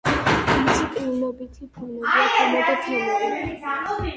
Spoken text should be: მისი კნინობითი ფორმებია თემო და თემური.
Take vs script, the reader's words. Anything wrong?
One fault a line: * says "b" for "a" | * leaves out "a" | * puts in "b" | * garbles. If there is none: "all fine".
all fine